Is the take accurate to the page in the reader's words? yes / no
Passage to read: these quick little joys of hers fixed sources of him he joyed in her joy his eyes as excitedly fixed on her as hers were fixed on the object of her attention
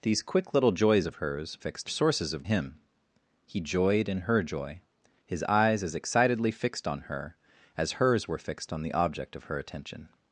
yes